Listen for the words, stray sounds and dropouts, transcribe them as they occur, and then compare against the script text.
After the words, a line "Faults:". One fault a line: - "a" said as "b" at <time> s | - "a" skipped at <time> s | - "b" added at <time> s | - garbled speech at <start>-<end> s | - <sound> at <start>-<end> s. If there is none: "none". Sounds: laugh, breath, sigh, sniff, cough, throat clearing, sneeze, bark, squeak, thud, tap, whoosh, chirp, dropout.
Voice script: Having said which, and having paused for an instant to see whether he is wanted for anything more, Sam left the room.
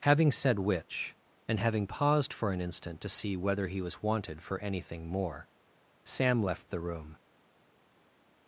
Having said which, and having paused for an instant to see whether he was wanted for anything more, Sam left the room.
Faults:
- "is" said as "was" at 3.8 s